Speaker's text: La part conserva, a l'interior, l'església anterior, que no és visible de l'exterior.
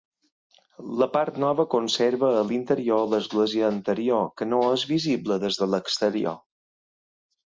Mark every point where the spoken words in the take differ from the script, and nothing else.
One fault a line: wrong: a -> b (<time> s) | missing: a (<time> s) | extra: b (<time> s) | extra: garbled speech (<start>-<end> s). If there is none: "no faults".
extra: nova (1.4 s)
extra: des (5.4 s)